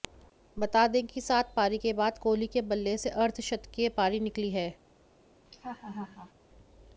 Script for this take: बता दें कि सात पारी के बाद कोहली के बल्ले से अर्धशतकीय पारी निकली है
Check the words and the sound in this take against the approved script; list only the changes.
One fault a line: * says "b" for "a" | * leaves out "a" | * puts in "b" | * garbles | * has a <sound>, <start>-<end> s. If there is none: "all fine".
* has a laugh, 5.5-6.3 s